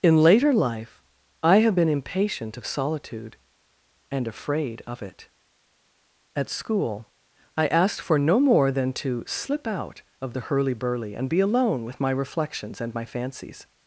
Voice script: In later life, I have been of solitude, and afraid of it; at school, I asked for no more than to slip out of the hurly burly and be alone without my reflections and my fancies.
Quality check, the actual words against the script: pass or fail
fail